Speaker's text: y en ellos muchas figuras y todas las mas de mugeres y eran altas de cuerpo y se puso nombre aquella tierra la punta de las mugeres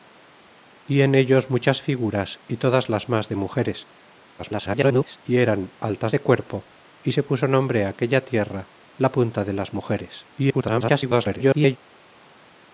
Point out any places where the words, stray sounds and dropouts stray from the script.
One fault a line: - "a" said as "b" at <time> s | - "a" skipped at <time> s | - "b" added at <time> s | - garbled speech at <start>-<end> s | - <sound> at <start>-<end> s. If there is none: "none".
- garbled speech at 4.4-5.2 s
- garbled speech at 10.4-11.8 s